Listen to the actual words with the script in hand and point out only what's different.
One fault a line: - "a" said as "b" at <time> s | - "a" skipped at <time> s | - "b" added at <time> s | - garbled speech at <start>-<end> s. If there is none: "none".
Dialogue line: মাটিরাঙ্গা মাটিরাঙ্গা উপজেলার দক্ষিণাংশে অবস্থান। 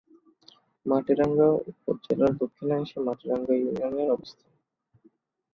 - "মাটিরাঙ্গা" skipped at 1.5 s
- "মাটিরাঙ্গা ইউনিয়নের" added at 3.1 s